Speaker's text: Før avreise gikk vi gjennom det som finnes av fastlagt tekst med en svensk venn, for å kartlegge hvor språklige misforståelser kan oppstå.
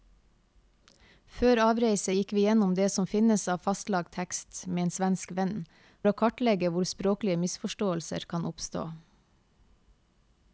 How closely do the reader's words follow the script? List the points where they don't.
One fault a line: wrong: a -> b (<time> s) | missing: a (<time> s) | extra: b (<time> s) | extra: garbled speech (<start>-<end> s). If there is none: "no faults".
missing: for (5.5 s)